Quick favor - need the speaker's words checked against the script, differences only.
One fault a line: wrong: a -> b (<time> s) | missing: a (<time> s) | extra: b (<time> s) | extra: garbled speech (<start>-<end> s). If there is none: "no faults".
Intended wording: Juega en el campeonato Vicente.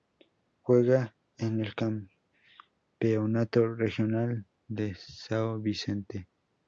extra: regional de São (3.8 s)